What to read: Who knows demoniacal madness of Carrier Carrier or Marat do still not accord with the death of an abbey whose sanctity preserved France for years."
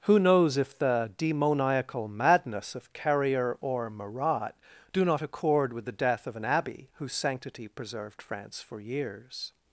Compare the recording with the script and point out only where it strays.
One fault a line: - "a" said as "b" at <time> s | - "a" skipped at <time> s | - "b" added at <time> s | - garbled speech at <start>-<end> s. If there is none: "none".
- "if the" added at 0.6 s
- "Carrier" skipped at 3.5 s
- "still" skipped at 5.0 s